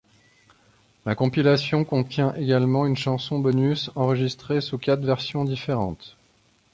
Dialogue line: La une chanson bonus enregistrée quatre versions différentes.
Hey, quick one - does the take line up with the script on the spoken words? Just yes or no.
no